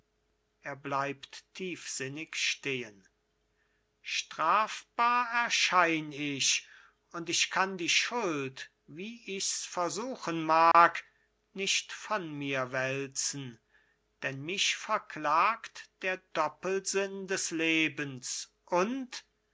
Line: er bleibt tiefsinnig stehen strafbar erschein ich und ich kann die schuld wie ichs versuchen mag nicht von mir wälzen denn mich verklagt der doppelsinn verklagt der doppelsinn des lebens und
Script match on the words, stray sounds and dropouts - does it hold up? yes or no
no